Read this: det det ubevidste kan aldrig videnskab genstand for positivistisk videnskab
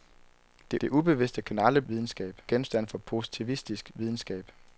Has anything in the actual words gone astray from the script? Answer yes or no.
no